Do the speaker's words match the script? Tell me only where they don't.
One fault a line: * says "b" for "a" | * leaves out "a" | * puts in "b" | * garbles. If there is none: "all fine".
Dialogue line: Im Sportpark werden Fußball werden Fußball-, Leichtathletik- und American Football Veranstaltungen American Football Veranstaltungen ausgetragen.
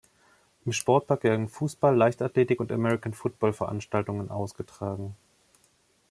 * leaves out "werden Fußball"
* leaves out "American Football Veranstaltungen"